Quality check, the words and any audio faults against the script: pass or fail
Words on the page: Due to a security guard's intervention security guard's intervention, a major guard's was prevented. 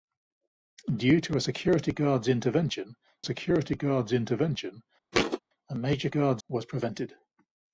fail